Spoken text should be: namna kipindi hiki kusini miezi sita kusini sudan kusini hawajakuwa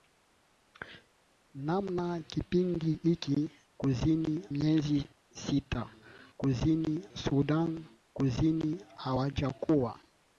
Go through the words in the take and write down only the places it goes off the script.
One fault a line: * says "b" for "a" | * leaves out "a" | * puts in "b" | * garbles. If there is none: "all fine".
all fine